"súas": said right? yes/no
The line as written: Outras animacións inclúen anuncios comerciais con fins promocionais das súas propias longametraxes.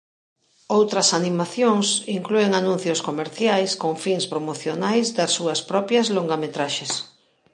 yes